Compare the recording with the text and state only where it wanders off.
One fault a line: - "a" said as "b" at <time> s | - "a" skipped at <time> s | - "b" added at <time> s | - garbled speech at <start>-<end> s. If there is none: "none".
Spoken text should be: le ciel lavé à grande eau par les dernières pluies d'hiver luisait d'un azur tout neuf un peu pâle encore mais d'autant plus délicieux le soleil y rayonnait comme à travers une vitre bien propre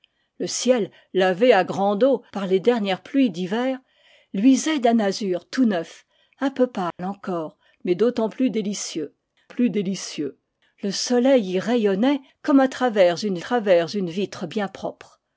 - "plus délicieux" added at 9.5 s
- "travers une" added at 13.4 s